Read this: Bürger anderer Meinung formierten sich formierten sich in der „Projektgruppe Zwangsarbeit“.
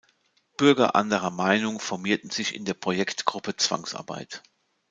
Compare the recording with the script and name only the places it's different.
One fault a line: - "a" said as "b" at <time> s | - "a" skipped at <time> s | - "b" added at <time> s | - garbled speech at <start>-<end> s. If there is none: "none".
- "formierten sich" skipped at 2.5 s